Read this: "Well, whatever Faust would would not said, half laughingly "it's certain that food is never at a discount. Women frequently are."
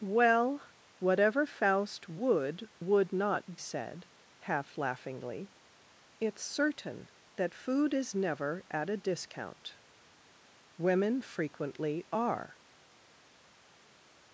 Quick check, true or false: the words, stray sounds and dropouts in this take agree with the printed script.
true